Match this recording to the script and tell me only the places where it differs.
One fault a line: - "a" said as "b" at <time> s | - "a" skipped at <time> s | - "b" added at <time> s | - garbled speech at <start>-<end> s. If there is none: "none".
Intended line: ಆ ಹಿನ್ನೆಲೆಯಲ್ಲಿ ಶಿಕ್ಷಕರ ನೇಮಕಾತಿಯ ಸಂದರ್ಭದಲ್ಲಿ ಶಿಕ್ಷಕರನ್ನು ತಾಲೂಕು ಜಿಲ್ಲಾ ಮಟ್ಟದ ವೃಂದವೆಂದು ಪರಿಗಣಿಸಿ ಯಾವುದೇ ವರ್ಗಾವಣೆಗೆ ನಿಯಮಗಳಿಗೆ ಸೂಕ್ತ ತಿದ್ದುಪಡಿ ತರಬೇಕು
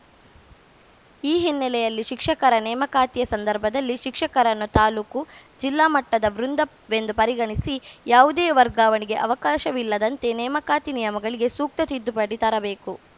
- "ಆ" said as "ಈ" at 1.2 s
- "ಅವಕಾಶವಿಲ್ಲದಂತೆ ನೇಮಕಾತಿ" added at 9.2 s